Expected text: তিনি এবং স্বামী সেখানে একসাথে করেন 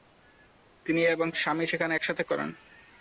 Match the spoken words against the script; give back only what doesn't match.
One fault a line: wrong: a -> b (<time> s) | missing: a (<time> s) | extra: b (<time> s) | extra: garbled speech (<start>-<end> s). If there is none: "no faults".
no faults